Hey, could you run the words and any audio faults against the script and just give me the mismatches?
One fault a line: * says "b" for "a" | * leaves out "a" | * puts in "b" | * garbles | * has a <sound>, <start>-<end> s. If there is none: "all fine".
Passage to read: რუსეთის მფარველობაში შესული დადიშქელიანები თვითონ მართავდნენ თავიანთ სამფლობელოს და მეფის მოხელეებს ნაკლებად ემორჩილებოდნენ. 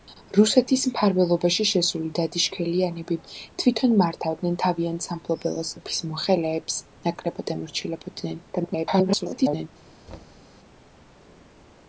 * leaves out "და"
* garbles
* has a thud, 10.1-10.5 s